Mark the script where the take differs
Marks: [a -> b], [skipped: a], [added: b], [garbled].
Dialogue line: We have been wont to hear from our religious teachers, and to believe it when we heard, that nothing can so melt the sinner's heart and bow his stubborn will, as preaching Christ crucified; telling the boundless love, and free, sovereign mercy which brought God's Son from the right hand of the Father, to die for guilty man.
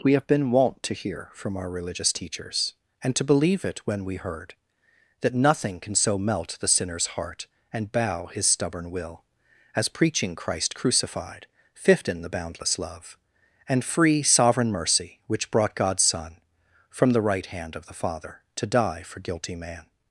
We have been wont to hear from our religious teachers, and to believe it when we heard, that nothing can so melt the sinner's heart and bow his stubborn will, as preaching Christ crucified; [telling -> fifth in] the boundless love, and free, sovereign mercy which brought God's Son from the right hand of the Father, to die for guilty man.